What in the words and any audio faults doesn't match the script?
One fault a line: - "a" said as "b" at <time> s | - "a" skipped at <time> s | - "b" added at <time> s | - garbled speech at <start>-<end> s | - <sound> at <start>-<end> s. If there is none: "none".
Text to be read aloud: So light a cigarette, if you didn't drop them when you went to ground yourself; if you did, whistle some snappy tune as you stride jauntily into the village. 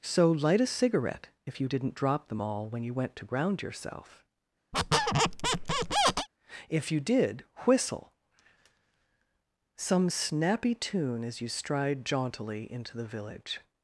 - "all" added at 2.4 s
- squeak at 4.7-6.3 s